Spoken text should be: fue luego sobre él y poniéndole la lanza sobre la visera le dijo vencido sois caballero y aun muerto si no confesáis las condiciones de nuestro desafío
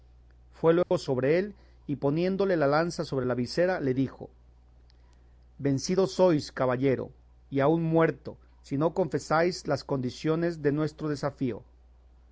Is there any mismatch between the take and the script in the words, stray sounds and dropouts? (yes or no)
yes